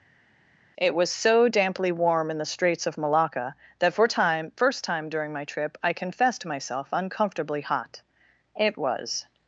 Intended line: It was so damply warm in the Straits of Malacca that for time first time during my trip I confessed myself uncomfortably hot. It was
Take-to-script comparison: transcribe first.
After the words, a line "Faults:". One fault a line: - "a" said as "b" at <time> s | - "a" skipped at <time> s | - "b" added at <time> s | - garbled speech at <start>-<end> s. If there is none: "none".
It was so damply warm in the Straits of Malacca that for time first time during my trip I confessed myself uncomfortably hot. It was
Faults:
none